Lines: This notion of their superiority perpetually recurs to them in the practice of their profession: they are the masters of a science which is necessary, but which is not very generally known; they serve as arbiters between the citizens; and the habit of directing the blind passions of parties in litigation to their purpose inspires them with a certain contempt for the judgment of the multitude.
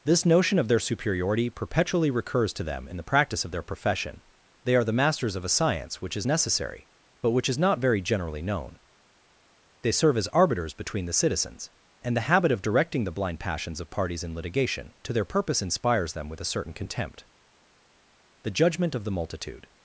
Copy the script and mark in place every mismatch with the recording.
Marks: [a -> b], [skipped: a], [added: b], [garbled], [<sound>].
This notion of their superiority perpetually recurs to them in the practice of their profession: they are the masters of a science which is necessary, but which is not very generally known; they serve as arbiters between the citizens; and the habit of directing the blind passions of parties in litigation to their purpose inspires them with a certain contempt [skipped: for] the judgment of the multitude.